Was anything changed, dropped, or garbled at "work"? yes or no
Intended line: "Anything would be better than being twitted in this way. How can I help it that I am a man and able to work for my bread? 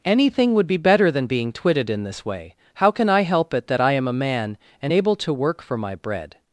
no